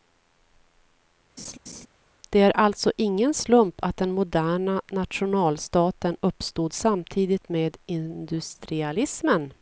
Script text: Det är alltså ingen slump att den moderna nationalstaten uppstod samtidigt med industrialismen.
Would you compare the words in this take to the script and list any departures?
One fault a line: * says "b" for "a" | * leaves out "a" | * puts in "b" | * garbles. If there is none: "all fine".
all fine